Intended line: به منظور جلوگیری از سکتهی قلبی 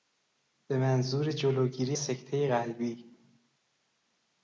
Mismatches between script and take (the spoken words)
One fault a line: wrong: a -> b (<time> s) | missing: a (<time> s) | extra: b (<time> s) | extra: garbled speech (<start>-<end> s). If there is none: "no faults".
missing: از (2.0 s)